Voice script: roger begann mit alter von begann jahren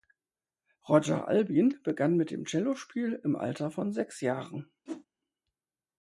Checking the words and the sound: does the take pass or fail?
fail